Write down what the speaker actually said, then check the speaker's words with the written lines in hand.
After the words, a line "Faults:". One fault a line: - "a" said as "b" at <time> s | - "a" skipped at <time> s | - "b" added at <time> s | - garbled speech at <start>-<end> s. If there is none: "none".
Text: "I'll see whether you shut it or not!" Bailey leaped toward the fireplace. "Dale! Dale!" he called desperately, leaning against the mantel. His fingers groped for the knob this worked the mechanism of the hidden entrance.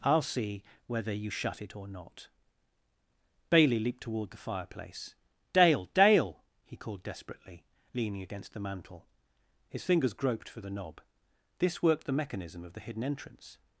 "I'll see whether you shut it or not!" Bailey leaped toward the fireplace. "Dale! Dale!" he called desperately, leaning against the mantel. His fingers groped for the knob this worked the mechanism of the hidden entrance.
Faults:
none